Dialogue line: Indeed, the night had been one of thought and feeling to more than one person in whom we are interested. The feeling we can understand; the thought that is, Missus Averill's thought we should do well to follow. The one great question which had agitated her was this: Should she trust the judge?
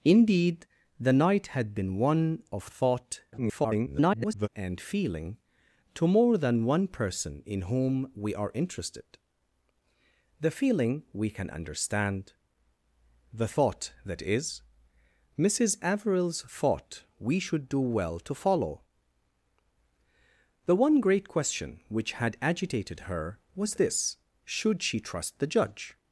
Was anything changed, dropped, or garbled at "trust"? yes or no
no